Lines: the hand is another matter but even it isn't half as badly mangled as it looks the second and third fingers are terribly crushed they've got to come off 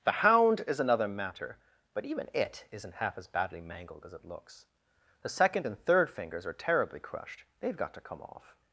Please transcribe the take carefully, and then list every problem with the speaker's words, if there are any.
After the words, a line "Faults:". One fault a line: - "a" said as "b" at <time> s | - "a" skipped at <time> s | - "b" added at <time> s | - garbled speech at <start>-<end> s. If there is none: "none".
the hound is another matter but even it isn't half as badly mangled as it looks the second and third fingers are terribly crushed they've got to come off
Faults:
- "hand" said as "hound" at 0.1 s